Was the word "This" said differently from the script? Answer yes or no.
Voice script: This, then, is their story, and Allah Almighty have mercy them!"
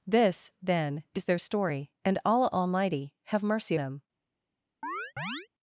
no